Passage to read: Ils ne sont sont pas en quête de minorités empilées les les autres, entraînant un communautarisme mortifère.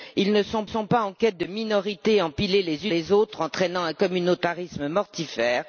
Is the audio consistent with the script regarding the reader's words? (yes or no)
yes